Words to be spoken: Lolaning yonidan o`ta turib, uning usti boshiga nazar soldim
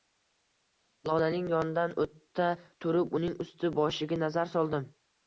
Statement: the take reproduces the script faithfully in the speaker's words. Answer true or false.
true